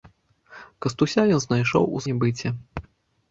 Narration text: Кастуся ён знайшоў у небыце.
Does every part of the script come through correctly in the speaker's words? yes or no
yes